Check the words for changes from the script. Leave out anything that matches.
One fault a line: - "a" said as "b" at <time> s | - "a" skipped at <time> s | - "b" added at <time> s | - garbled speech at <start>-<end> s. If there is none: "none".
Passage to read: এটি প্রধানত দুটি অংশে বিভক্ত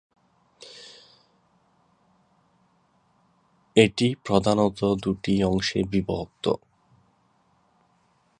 none